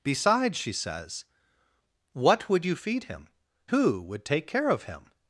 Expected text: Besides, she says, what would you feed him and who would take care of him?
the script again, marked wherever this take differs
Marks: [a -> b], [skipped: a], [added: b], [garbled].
Besides, she says, what would you feed him [skipped: and] who would take care of him?